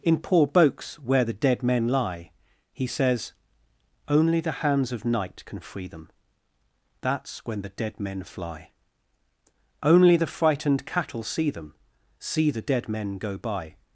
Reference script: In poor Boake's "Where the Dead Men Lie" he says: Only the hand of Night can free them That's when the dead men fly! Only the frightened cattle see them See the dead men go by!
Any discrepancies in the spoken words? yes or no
yes